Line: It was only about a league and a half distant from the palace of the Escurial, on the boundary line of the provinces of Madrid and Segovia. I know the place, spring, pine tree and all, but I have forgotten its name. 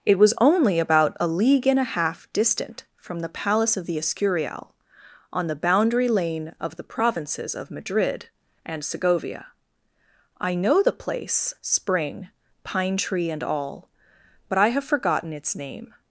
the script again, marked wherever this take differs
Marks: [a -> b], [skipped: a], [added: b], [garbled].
It was only about a league and a half distant from the palace of the Escurial, on the boundary [line -> lane] of the provinces of Madrid and Segovia. I know the place, spring, pine tree and all, but I have forgotten its name.